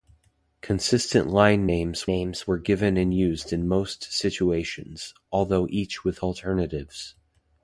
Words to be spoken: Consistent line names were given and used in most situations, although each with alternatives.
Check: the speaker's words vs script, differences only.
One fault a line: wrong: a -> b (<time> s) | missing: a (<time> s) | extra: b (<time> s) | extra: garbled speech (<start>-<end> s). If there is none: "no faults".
extra: names (2.1 s)